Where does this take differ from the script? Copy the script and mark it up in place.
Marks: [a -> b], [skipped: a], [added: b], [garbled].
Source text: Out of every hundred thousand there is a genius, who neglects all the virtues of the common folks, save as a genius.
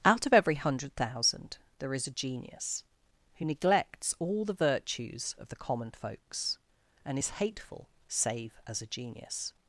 Out of every hundred thousand there is a genius, who neglects all the virtues of the common folks, [added: and is hateful] save as a genius.